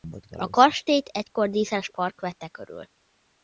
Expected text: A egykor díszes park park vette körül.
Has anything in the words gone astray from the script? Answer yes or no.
yes